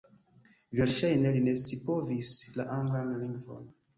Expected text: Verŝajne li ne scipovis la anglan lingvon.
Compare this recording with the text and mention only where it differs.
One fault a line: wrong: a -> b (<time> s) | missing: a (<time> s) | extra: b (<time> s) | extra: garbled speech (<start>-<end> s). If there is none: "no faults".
no faults